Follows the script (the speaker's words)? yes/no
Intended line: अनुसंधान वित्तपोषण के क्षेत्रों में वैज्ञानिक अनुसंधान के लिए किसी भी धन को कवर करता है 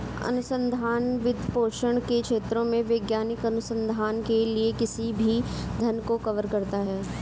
yes